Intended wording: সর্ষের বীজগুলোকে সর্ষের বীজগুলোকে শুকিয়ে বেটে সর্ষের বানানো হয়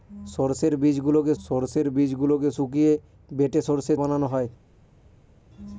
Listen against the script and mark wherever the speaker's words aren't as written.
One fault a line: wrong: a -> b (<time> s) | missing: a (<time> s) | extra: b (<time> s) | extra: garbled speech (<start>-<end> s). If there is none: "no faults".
no faults